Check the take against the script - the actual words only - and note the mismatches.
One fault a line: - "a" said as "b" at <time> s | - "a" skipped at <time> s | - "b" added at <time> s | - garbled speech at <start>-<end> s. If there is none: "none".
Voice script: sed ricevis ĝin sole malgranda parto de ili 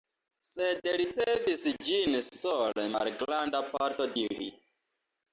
- "de" skipped at 4.1 s